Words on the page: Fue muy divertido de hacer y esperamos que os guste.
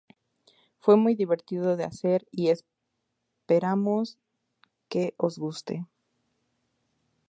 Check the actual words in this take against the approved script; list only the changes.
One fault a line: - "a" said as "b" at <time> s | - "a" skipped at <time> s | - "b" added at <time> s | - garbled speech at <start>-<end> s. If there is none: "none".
none